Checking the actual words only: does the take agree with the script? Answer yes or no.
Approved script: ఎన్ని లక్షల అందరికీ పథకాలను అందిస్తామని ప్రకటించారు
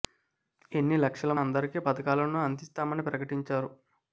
yes